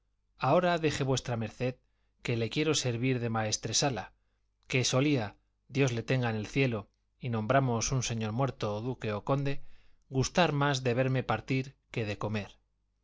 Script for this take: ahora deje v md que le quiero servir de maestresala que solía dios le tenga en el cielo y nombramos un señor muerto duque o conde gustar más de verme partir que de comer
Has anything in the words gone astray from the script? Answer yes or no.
no